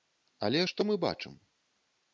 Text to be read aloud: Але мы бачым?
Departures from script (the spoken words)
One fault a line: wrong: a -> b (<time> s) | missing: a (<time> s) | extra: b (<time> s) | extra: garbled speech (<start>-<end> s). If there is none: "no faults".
extra: што (0.7 s)